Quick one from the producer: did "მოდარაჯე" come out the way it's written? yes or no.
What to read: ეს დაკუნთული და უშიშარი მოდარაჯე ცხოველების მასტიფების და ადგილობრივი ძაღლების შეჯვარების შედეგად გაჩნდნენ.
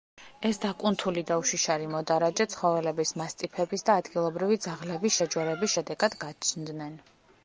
yes